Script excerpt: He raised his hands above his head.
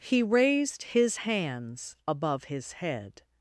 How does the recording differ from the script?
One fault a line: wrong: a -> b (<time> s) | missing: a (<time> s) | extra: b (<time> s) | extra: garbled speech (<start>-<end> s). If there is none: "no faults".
no faults